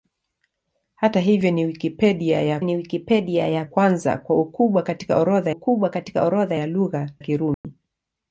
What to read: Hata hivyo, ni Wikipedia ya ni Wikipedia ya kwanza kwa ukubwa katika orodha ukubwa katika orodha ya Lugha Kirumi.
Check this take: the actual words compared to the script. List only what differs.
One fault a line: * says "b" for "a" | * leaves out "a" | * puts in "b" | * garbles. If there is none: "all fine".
all fine